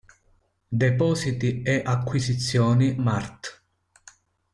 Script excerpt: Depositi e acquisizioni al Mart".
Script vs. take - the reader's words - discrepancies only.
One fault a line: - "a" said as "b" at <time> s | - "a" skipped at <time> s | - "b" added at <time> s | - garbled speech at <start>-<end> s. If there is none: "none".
- "al" skipped at 3.0 s